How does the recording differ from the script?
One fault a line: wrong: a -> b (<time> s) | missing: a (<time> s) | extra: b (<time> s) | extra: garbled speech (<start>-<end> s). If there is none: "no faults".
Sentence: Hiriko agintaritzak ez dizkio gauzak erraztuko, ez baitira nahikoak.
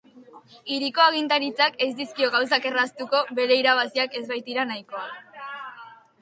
extra: bere irabaziak (3.4 s)